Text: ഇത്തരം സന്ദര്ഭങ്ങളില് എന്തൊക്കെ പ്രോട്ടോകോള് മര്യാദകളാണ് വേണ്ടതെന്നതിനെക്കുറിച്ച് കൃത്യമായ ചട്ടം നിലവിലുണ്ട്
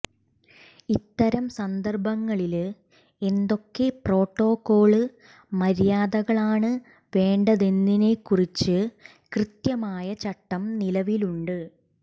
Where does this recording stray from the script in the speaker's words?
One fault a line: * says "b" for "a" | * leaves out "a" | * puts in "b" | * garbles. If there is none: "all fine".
all fine